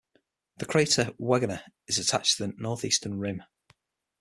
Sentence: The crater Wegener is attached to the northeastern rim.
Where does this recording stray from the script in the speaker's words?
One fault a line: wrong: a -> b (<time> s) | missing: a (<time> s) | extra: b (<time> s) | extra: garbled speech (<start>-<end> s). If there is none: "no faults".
no faults